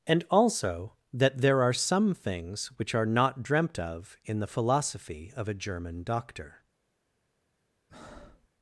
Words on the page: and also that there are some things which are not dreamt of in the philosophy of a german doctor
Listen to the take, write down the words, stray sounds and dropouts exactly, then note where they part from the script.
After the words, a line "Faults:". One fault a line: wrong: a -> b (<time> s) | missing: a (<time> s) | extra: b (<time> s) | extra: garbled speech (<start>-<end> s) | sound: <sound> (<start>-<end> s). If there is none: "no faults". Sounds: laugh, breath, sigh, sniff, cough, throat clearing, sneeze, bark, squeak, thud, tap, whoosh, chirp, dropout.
and also that there are some things which are not dreamt of in the philosophy of a german doctor
Faults:
sound: breath (7.9-8.5 s)